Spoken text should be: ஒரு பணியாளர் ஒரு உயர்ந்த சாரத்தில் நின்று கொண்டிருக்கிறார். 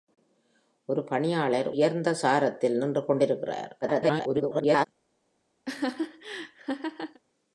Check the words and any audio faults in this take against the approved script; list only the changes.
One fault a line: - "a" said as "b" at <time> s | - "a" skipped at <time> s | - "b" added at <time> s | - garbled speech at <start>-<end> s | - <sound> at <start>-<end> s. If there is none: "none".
- "ஒரு" skipped at 1.7 s
- garbled speech at 3.8-4.9 s
- laugh at 5.6-7.2 s